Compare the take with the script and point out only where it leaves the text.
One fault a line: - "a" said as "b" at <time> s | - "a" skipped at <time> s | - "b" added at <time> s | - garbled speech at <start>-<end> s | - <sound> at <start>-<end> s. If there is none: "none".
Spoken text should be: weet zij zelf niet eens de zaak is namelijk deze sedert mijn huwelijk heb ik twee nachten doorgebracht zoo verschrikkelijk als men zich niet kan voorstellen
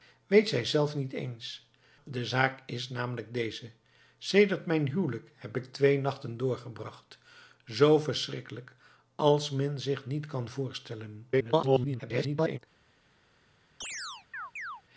- garbled speech at 11.3-12.6 s
- chirp at 13.8-14.8 s